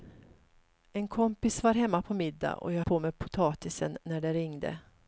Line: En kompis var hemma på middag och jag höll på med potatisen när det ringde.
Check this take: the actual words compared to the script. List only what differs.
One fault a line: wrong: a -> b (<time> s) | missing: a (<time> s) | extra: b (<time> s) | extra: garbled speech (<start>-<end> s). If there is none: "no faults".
missing: höll (2.8 s)